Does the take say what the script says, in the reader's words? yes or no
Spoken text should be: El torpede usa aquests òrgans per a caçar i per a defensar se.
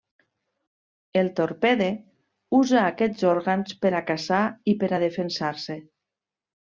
yes